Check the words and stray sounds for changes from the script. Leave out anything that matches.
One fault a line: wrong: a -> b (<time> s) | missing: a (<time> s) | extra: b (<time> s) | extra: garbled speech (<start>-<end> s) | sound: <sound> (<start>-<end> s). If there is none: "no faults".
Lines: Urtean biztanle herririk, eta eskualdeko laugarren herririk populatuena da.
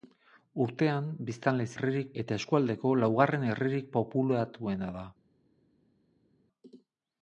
no faults